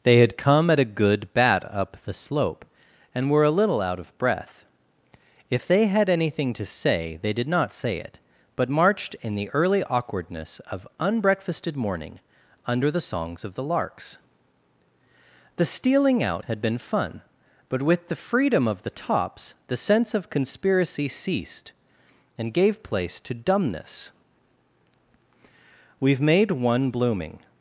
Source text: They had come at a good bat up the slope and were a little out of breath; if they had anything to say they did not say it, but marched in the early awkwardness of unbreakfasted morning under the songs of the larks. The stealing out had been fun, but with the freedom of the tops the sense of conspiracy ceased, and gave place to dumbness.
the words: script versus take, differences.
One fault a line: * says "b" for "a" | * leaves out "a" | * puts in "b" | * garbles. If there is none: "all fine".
* puts in "We've made one blooming"